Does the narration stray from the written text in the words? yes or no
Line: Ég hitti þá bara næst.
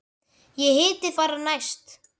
yes